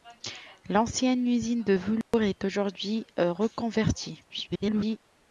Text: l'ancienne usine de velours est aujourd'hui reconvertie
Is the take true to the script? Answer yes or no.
no